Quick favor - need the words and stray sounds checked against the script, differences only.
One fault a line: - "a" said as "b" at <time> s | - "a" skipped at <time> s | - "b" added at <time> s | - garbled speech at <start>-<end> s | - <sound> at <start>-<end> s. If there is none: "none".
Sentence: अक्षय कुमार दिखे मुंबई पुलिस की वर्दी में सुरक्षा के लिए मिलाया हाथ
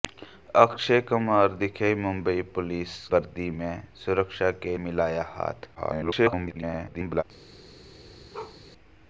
- "की" skipped at 3.0 s
- "लिए" skipped at 4.8 s
- garbled speech at 5.7-7.2 s
- bark at 8.3-8.6 s